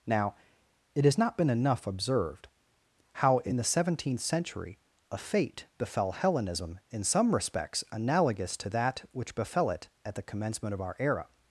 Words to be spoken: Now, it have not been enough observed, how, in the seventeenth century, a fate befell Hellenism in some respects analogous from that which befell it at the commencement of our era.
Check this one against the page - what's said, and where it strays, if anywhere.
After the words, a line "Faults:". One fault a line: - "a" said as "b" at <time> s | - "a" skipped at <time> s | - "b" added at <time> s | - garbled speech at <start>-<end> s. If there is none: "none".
Now, it has not been enough observed, how, in the seventeenth century, a fate befell Hellenism in some respects analogous to that which befell it at the commencement of our era.
Faults:
- "have" said as "has" at 1.1 s
- "from" said as "to" at 8.6 s